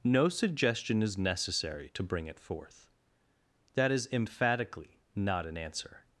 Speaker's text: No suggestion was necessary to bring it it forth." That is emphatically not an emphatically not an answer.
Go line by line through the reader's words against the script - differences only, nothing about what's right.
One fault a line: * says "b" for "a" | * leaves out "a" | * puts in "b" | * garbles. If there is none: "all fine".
* says "is" for "was"
* leaves out "it"
* leaves out "emphatically not an"